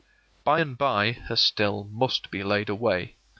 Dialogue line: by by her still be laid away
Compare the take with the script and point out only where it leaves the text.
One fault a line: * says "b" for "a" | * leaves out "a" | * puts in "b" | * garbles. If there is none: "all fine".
* puts in "and"
* puts in "must"